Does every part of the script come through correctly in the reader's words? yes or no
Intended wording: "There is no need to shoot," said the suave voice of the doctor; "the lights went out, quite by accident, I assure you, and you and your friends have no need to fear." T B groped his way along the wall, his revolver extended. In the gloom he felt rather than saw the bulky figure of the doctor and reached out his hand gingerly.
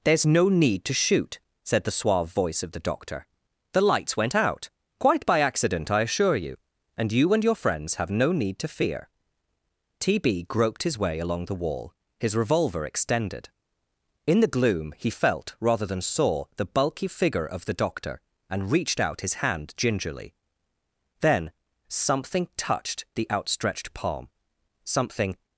no